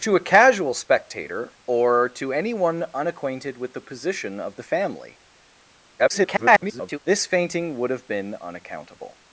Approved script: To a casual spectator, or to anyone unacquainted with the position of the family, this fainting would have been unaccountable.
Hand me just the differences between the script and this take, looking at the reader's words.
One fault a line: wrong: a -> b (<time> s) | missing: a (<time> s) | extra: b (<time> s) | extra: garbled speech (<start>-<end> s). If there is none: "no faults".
extra: garbled speech (6.0-7.0 s)